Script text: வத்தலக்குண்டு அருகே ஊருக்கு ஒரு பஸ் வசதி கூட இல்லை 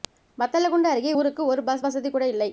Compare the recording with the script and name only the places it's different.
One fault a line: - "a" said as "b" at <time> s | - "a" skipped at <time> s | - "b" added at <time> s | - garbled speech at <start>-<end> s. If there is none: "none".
none